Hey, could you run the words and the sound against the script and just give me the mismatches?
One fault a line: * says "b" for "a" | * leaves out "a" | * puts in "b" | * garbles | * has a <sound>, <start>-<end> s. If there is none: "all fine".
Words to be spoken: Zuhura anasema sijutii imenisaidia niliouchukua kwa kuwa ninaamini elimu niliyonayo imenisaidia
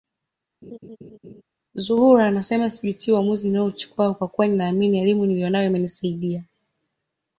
* has a laugh, 0.6-1.4 s
* says "uamuzi" for "imenisaidia"